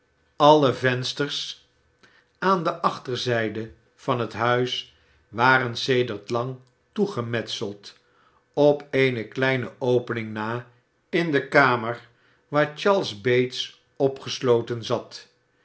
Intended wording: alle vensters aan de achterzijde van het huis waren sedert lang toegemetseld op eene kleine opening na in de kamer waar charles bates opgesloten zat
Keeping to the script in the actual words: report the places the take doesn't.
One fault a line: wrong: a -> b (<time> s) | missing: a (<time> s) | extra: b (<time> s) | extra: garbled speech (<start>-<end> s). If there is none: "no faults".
no faults